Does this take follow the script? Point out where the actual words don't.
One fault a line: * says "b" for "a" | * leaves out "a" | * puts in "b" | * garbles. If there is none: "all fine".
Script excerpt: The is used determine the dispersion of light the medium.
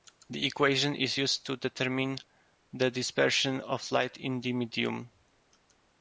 * puts in "equation"
* puts in "to"
* puts in "in"